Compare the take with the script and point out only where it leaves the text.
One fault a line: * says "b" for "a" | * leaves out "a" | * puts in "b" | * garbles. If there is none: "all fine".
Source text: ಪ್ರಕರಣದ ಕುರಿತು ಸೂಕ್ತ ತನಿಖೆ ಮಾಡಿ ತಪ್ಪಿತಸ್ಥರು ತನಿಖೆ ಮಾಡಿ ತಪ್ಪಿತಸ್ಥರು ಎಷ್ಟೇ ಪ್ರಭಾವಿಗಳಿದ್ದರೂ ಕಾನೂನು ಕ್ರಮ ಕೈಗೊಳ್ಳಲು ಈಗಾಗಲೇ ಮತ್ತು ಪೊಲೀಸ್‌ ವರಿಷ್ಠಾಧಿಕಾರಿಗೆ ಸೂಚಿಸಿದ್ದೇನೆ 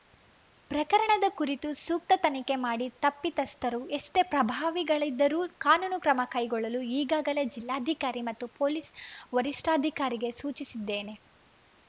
* leaves out "ತನಿಖೆ ಮಾಡಿ ತಪ್ಪಿತಸ್ಥರು"
* puts in "ಜಿಲ್ಲಾಧಿಕಾರಿ"